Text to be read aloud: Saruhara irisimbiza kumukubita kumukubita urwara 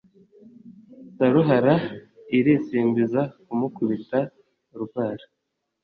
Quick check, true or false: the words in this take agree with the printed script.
false